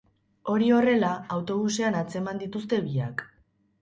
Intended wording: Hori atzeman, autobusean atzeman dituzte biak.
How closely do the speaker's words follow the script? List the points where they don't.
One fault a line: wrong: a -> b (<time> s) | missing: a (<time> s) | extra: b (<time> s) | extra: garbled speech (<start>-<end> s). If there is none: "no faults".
wrong: atzeman -> horrela (0.8 s)